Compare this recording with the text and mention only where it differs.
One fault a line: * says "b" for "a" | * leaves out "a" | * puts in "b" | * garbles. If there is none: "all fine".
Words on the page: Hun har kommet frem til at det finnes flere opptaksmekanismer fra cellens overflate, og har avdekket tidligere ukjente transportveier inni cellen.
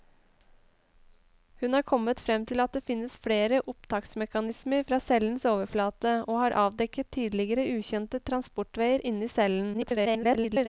* garbles